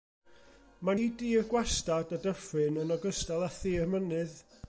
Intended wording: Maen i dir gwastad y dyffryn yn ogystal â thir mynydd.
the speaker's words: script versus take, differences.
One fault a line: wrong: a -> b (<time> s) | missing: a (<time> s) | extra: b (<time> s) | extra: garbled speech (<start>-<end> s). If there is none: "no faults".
no faults